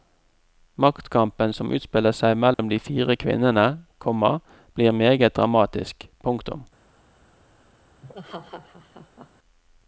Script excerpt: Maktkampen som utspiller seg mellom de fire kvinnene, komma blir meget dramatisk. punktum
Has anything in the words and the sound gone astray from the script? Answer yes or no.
yes